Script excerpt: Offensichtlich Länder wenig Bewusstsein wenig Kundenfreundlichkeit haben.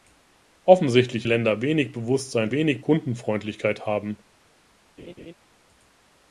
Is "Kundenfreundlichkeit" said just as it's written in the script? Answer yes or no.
yes